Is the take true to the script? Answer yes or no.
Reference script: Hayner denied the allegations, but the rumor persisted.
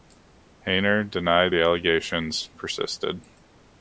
no